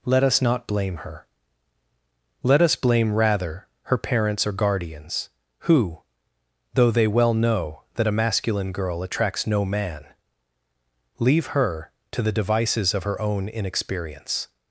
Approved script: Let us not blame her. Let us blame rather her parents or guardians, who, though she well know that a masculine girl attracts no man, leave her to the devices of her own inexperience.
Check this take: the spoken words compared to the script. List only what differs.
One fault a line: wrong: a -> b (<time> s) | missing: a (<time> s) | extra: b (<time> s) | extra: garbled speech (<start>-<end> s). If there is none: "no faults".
wrong: she -> they (6.9 s)